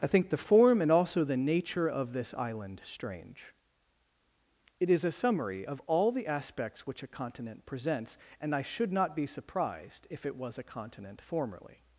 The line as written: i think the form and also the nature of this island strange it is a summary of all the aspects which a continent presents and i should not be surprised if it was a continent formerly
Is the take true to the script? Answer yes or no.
yes